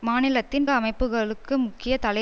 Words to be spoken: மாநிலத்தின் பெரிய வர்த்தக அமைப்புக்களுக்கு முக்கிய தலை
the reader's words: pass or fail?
fail